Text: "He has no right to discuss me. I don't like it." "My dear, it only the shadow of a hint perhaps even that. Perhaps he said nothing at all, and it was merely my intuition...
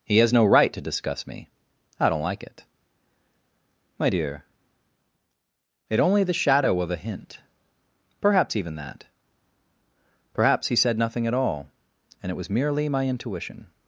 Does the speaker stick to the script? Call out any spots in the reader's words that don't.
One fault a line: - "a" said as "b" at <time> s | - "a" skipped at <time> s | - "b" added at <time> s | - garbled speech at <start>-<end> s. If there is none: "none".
none